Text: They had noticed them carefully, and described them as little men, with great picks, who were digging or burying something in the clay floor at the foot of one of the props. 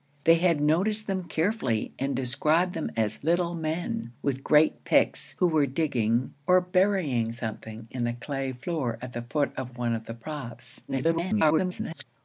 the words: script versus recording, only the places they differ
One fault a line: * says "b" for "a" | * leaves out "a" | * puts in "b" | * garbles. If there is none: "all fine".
* garbles